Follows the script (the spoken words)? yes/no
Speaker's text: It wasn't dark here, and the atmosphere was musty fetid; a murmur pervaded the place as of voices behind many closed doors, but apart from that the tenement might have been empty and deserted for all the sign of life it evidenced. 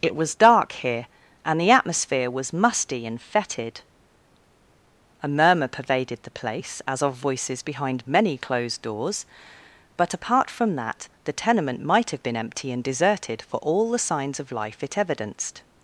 no